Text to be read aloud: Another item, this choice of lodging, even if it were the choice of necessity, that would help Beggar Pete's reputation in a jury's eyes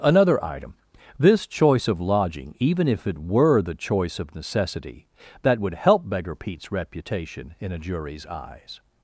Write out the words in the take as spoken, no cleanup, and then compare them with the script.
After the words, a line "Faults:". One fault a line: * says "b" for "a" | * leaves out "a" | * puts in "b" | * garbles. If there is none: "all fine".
Another item, this choice of lodging, even if it were the choice of necessity, that would help Beggar Pete's reputation in a jury's eyes
Faults:
all fine